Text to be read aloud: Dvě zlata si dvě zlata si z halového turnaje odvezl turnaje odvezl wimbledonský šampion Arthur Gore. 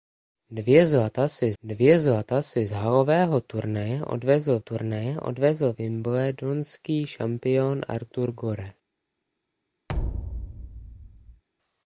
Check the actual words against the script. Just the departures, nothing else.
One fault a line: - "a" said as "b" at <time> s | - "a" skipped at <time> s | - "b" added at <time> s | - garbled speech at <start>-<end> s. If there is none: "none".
none